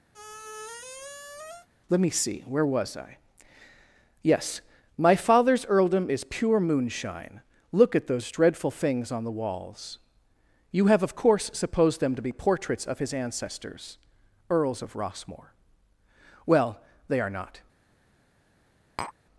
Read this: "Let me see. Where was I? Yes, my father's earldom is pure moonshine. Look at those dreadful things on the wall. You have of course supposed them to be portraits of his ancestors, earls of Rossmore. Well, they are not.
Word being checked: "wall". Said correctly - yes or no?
no